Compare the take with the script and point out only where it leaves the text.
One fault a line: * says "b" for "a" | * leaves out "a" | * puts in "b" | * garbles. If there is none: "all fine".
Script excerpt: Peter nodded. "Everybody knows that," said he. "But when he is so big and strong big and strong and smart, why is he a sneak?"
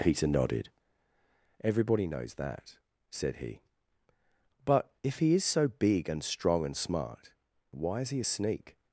* says "if" for "when"
* leaves out "big and strong"